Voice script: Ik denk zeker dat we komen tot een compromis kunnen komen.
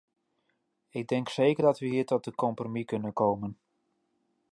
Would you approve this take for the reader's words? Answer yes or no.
no